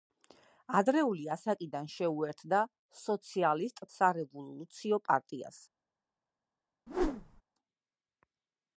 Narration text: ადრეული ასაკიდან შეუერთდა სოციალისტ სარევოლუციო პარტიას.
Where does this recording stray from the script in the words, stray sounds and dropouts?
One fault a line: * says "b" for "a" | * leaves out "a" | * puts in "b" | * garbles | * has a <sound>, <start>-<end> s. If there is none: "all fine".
* has a whoosh, 6.9-7.4 s